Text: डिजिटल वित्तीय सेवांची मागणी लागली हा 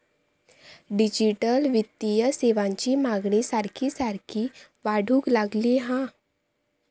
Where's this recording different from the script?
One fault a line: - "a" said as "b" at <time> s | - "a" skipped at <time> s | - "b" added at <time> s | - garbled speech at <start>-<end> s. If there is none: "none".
- "सारखी सारखी वाढूक" added at 3.4 s